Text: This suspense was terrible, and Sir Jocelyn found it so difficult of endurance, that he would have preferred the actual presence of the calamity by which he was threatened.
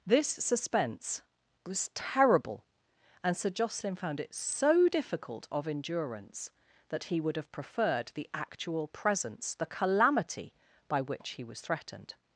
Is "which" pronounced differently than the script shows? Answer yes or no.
no